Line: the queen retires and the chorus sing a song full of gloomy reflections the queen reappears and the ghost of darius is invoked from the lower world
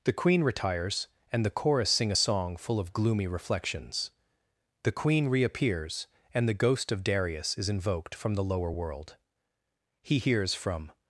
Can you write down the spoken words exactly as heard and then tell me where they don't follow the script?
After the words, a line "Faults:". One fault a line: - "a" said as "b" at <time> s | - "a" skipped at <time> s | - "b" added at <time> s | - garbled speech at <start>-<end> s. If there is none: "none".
the queen retires and the chorus sing a song full of gloomy reflections the queen reappears and the ghost of darius is invoked from the lower world he hears from
Faults:
- "he hears from" added at 10.0 s